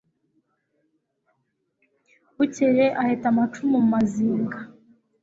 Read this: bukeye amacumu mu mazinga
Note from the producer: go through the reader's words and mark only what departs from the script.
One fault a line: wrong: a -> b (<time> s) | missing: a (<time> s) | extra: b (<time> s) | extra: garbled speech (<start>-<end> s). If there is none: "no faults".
extra: aheta (3.0 s)